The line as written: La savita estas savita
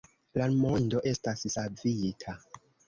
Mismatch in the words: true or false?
true